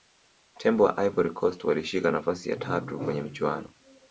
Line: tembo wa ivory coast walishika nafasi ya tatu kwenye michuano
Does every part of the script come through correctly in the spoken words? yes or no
yes